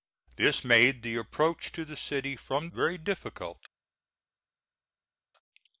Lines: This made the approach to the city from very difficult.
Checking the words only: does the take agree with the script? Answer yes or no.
yes